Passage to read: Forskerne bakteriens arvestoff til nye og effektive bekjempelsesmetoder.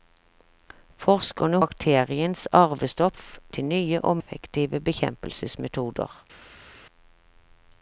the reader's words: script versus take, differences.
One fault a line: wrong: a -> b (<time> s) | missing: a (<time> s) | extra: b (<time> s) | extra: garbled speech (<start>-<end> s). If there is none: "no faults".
no faults